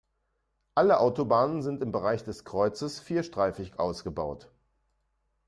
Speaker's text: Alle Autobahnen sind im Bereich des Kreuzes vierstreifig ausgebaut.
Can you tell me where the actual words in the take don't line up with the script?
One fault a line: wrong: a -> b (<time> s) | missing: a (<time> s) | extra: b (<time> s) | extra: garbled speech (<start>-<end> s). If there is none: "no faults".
no faults